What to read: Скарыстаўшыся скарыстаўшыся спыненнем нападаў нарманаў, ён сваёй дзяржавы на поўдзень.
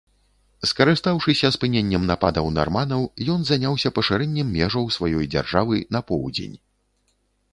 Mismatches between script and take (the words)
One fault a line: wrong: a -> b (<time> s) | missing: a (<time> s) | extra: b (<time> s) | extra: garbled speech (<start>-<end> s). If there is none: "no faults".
missing: скарыстаўшыся (1.5 s)
extra: заняўся пашырэннем межаў (3.5 s)